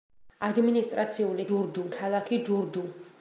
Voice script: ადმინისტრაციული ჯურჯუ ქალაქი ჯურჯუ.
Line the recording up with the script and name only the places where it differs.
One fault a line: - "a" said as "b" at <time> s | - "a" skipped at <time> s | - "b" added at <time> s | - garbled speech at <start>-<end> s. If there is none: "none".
none